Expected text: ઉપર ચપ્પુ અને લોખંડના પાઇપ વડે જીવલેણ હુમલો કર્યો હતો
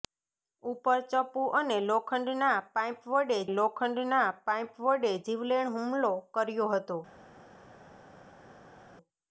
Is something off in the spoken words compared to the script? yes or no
yes